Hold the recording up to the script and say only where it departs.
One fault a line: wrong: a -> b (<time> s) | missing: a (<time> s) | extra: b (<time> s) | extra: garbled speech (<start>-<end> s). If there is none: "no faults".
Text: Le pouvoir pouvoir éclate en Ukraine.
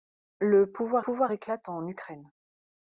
no faults